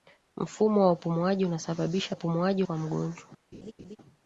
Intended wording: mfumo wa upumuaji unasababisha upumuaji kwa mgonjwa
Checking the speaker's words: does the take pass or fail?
pass